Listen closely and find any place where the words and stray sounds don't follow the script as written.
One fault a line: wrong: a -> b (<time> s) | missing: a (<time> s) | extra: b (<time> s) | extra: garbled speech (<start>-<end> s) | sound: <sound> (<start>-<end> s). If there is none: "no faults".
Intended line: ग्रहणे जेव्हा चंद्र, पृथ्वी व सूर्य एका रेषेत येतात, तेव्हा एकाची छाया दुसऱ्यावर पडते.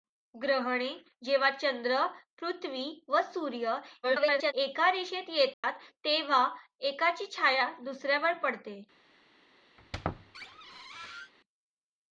extra: garbled speech (4.0-4.5 s)
sound: dropout (5.5-5.6 s)
sound: squeak (9.8-11.3 s)